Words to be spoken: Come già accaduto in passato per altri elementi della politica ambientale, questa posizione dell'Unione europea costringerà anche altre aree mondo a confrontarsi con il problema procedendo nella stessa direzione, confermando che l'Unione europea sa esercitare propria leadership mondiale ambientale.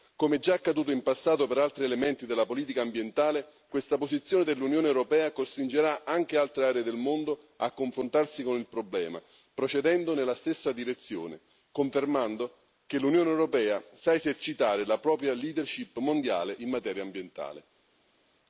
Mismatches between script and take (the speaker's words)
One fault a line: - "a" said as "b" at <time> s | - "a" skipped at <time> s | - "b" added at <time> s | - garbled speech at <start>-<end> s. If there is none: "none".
- "del" added at 6.8 s
- "la" added at 14.9 s
- "in materia" added at 16.6 s